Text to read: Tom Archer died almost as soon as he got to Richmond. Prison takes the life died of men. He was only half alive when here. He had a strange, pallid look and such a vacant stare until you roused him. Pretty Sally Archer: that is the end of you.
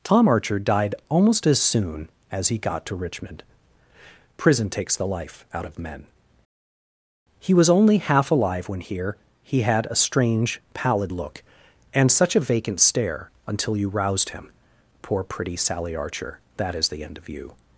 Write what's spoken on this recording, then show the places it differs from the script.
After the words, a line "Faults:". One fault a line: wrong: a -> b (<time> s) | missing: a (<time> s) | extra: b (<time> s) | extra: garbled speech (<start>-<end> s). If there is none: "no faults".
Tom Archer died almost as soon as he got to Richmond. Prison takes the life out of men. He was only half alive when here. He had a strange, pallid look and such a vacant stare until you roused him. Poor pretty Sally Archer: that is the end of you.
Faults:
wrong: died -> out (5.5 s)
extra: Poor (15.0 s)